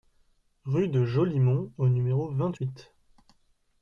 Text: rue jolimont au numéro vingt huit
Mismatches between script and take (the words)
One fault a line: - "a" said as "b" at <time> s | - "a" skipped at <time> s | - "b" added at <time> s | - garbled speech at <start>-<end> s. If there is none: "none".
- "de" added at 0.9 s